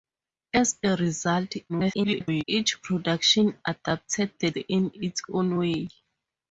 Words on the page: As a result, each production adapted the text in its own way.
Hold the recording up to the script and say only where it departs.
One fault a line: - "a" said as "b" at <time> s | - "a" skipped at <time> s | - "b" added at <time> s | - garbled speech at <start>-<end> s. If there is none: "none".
- garbled speech at 1.7-2.4 s
- "text" skipped at 4.5 s